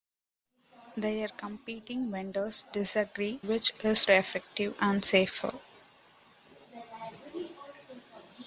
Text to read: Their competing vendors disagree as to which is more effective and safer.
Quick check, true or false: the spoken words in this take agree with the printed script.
false